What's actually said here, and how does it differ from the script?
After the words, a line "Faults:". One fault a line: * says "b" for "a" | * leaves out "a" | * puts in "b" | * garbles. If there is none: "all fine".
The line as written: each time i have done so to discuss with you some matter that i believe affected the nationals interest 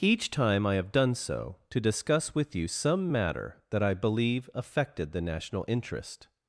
each time i have done so to discuss with you some matter that i believe affected the national interest
Faults:
* says "national" for "nationals"